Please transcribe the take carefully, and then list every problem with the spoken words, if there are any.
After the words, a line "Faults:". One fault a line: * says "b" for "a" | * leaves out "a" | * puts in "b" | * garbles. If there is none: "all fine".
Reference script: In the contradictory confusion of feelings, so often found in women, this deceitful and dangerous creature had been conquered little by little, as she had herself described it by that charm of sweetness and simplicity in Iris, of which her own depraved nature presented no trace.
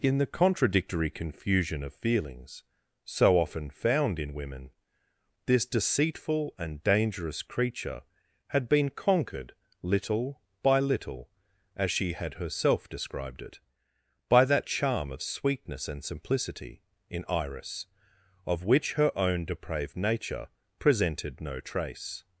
In the contradictory confusion of feelings, so often found in women, this deceitful and dangerous creature had been conquered little by little, as she had herself described it by that charm of sweetness and simplicity in Iris, of which her own depraved nature presented no trace.
Faults:
all fine